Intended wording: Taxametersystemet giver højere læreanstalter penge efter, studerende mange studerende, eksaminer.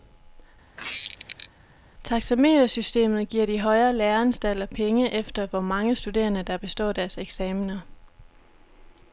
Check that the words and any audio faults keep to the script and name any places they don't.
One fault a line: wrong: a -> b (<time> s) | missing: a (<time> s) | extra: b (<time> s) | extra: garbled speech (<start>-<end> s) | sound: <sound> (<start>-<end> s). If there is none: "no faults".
sound: squeak (0.8-1.5 s)
extra: de (3.5 s)
wrong: studerende -> hvor (5.5 s)
extra: der består deres (6.4 s)